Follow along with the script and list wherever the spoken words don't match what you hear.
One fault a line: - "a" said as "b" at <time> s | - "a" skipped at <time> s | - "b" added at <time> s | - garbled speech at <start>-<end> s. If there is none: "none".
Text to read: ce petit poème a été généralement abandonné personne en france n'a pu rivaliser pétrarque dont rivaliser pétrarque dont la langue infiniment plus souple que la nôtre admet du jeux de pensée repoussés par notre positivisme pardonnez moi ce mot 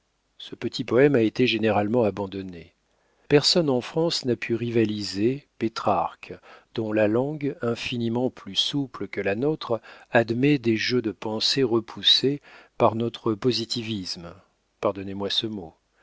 - "rivaliser pétrarque dont" skipped at 6.9 s
- "du" said as "des" at 10.6 s